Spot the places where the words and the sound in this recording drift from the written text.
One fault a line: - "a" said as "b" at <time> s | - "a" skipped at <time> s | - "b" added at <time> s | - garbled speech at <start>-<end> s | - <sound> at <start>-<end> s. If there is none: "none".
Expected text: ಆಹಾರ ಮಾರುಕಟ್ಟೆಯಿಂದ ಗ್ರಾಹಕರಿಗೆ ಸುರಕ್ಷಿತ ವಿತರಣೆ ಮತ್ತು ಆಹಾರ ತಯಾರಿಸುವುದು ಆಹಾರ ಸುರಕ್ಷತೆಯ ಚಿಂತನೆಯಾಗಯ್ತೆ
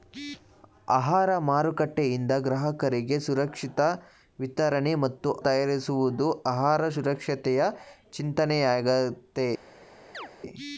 - "ಆಹಾರ" skipped at 5.3 s
- chirp at 10.1-10.3 s